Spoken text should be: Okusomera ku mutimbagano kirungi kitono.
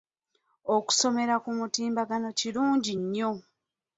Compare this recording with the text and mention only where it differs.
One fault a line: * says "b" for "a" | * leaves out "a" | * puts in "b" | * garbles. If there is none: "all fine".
* says "nnyo" for "kitono"